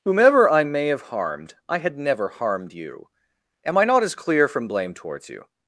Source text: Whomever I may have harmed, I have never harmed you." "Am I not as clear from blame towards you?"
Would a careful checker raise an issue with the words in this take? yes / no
yes